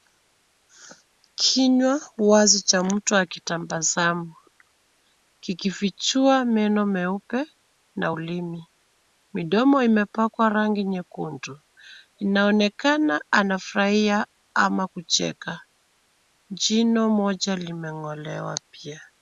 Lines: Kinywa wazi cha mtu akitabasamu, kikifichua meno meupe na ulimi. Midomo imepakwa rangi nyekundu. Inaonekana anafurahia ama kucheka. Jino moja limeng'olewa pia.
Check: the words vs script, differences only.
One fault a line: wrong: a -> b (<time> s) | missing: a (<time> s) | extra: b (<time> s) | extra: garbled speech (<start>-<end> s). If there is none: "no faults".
no faults